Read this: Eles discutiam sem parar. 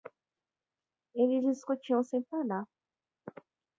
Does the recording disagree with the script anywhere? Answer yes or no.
no